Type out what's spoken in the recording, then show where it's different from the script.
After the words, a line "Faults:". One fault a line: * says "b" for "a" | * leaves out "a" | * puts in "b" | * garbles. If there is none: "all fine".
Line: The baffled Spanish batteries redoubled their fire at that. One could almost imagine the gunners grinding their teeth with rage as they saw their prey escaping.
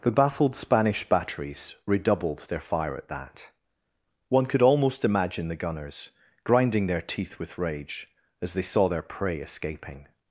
The baffled Spanish batteries redoubled their fire at that. One could almost imagine the gunners grinding their teeth with rage as they saw their prey escaping.
Faults:
all fine